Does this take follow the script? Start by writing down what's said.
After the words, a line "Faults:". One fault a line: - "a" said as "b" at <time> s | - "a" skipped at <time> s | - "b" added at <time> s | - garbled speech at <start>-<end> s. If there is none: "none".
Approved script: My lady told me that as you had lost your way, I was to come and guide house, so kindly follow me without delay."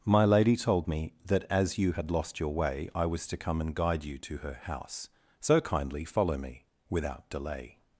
My lady told me that as you had lost your way, I was to come and guide you to her house, so kindly follow me without delay."
Faults:
- "you to her" added at 4.0 s